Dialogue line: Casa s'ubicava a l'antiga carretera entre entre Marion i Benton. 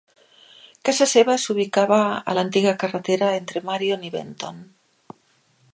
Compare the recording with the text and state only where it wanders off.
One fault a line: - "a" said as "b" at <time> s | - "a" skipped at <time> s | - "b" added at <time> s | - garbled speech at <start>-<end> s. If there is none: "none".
- "seva" added at 1.1 s
- "entre" skipped at 3.6 s